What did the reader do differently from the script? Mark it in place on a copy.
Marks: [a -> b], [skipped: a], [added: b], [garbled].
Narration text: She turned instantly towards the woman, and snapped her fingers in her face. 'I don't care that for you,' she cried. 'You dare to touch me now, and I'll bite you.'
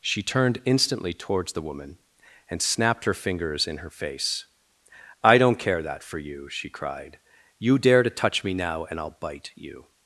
She turned instantly towards the woman, and snapped her fingers in her face. 'I don't care that for you,' she cried. 'You dare to touch me now, and I'll bite you.'